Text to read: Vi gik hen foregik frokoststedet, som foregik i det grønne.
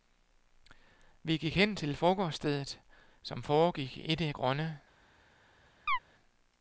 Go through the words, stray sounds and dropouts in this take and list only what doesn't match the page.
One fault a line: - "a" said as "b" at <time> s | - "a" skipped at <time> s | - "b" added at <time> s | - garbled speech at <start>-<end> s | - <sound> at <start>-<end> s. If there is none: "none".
- "foregik" said as "til" at 1.8 s
- chirp at 5.9-6.0 s